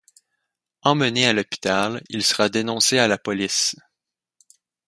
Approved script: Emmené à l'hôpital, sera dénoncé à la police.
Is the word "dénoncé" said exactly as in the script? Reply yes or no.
yes